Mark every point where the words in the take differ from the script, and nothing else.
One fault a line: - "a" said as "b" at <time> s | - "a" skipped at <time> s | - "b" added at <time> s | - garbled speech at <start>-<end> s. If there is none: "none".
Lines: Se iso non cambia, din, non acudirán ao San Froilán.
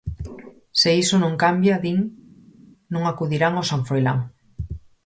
none